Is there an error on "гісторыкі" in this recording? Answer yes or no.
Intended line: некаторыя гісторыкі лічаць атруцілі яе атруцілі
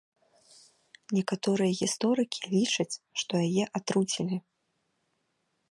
no